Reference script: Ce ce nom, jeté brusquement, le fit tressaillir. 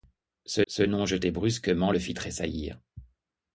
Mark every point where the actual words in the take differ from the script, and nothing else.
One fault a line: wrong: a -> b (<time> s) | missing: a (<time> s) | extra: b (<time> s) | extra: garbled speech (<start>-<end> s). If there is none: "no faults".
no faults